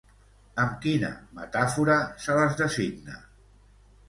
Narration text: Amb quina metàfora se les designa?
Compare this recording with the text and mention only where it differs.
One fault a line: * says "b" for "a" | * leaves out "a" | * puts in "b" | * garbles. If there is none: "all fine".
all fine